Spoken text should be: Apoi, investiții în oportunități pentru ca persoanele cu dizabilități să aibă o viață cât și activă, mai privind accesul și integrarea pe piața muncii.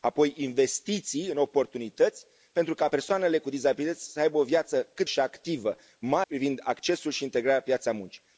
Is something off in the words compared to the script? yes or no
no